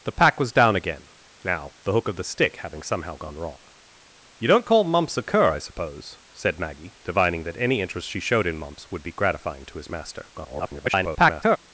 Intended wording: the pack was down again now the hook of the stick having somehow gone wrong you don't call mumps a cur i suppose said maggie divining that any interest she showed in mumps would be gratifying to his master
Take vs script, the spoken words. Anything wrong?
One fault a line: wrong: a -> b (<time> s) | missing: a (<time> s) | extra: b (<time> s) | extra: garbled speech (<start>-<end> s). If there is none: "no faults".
extra: garbled speech (10.3-11.6 s)